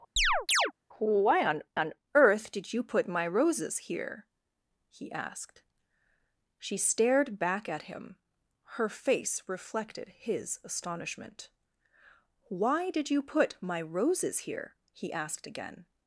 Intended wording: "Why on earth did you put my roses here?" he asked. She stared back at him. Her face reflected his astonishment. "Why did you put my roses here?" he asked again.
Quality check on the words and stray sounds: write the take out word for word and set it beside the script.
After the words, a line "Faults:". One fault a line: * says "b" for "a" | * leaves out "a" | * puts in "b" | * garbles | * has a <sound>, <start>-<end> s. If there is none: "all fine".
"Why on on earth did you put my roses here?" he asked. She stared back at him. Her face reflected his astonishment. "Why did you put my roses here?" he asked again.
Faults:
* has a chirp, 0.2-0.7 s
* puts in "on"